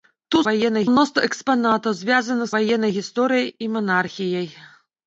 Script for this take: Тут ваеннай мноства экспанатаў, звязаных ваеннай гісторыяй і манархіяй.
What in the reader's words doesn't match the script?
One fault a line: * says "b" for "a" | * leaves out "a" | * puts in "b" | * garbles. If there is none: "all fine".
all fine